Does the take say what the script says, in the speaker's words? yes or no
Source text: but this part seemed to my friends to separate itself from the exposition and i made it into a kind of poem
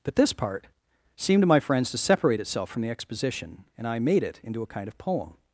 yes